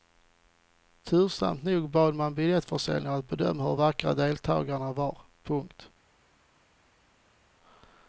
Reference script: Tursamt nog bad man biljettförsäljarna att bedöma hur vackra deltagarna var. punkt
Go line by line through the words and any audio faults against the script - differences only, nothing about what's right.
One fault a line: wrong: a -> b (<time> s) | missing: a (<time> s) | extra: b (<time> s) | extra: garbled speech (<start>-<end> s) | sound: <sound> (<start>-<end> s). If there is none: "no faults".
no faults